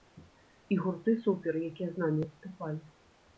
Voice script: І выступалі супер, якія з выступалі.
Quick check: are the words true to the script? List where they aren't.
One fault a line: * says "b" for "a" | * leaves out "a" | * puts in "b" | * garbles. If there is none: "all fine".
* says "гурты" for "выступалі"
* puts in "намі"